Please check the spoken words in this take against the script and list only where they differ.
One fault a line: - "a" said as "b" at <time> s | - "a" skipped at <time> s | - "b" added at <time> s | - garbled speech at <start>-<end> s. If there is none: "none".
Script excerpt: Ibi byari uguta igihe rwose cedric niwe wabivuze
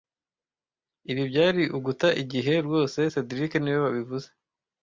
none